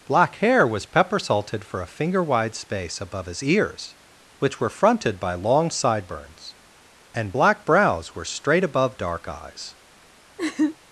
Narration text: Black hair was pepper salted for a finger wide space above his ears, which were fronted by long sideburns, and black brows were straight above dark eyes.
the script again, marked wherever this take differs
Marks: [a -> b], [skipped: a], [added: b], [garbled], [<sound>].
Black hair was pepper salted for a finger wide space above his ears, which were fronted by long sideburns, and black brows were straight above dark eyes. [laugh]